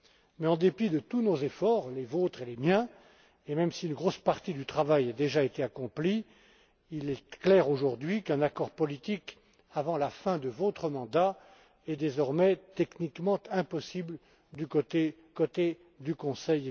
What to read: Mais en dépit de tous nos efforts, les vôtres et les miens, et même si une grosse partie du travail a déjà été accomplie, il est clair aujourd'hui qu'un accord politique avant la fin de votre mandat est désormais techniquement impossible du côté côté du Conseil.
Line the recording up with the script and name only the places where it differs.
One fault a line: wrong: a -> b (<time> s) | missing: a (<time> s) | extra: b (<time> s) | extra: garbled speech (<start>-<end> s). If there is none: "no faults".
no faults